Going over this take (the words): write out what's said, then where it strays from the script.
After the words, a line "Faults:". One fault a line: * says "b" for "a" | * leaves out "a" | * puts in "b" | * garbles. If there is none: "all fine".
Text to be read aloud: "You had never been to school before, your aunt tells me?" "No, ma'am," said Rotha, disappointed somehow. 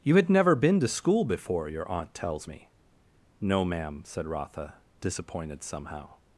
"You had never been to school before, your aunt tells me?" "No, ma'am," said Rotha, disappointed somehow.
Faults:
all fine